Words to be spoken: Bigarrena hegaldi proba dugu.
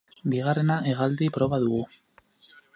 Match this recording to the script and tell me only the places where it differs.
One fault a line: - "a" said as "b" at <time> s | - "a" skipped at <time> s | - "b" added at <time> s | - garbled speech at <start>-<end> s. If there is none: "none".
none